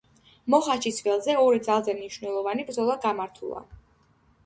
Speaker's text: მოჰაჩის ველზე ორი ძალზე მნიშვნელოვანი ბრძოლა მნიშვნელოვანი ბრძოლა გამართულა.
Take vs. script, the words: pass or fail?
fail